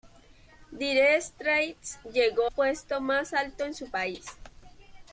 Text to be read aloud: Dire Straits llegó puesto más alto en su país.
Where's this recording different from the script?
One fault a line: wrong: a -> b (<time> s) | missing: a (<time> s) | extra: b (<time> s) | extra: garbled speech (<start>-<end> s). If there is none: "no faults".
no faults